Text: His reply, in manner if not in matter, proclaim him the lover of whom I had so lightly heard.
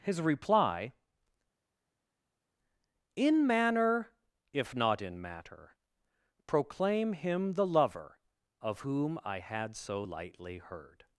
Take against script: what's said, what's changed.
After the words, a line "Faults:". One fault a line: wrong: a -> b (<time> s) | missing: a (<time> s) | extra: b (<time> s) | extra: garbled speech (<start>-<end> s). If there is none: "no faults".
His reply, in manner if not in matter, proclaim him the lover of whom I had so lightly heard.
Faults:
no faults